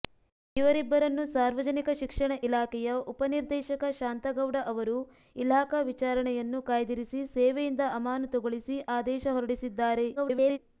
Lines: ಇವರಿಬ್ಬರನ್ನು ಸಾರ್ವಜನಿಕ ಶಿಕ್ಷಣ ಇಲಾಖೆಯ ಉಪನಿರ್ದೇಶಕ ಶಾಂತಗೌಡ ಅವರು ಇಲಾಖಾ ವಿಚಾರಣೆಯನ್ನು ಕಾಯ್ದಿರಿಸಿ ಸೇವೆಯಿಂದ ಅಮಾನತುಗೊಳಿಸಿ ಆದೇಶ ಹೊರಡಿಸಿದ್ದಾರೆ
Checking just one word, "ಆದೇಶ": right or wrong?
right